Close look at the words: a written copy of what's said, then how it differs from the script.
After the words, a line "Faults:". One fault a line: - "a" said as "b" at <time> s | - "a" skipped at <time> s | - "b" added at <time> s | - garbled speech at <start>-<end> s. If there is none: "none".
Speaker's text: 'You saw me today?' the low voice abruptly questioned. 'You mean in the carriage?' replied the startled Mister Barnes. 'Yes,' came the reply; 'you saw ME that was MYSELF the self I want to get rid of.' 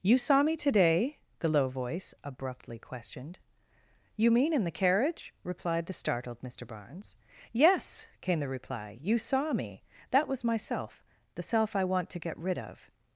'You saw me today?' the low voice abruptly questioned. 'You mean in the carriage?' replied the startled Mister Barnes. 'Yes,' came the reply; 'you saw ME that was MYSELF the self I want to get rid of.'
Faults:
none